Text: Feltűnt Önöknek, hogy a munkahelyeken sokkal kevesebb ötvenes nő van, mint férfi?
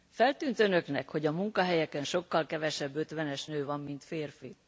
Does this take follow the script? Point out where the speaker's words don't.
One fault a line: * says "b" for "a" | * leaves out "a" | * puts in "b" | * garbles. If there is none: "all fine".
all fine